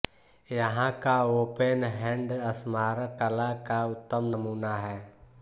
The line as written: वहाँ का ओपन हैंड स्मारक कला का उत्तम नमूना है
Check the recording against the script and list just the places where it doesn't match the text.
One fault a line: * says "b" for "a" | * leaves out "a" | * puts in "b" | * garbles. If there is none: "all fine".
* says "यहाँ" for "वहाँ"